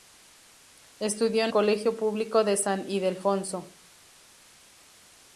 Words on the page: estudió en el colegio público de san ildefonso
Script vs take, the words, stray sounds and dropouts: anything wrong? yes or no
yes